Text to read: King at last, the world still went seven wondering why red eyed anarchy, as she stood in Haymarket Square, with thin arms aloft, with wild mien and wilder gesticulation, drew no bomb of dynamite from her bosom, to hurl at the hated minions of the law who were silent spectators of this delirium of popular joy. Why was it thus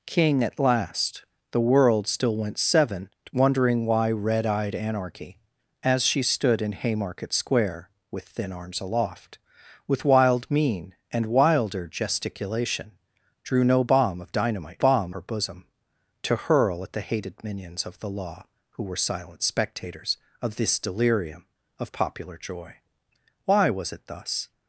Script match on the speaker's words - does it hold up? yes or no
no